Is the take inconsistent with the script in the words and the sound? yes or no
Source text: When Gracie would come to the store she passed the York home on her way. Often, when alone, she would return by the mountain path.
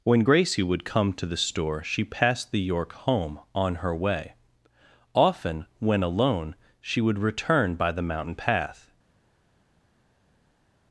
no